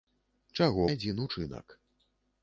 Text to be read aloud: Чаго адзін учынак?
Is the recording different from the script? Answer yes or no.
no